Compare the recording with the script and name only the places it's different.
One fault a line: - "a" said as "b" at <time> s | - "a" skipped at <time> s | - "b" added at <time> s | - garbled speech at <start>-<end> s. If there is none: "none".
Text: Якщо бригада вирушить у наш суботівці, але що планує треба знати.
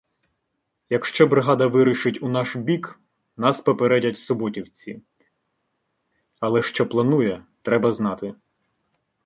- "бік нас попередять" added at 2.5 s